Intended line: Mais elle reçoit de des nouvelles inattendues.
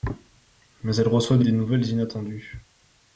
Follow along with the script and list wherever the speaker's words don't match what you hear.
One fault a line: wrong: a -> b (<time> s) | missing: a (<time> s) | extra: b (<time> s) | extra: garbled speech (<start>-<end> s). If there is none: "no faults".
no faults